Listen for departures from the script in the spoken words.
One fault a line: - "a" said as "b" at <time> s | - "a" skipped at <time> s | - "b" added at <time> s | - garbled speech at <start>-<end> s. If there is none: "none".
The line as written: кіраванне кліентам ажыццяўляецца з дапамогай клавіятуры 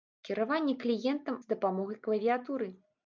- "ажыццяўляецца" skipped at 1.4 s